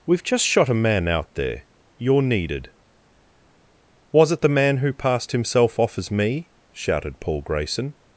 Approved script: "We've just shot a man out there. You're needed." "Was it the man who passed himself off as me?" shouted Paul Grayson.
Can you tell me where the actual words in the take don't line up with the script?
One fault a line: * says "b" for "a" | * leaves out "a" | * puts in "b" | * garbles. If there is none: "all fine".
all fine